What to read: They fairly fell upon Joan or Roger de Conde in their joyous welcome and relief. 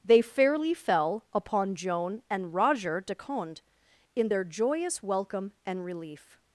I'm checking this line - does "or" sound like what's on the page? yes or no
no